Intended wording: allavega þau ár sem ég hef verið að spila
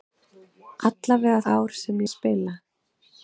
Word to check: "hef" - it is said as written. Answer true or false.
false